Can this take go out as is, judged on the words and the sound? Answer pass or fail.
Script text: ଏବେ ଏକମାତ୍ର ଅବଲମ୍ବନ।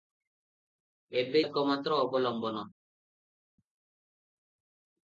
pass